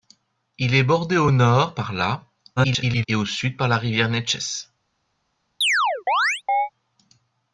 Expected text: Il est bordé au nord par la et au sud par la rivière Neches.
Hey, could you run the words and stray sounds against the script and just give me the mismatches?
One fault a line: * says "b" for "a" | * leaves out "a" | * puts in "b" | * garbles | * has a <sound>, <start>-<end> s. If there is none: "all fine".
* garbles
* has a chirp, 5.6-6.7 s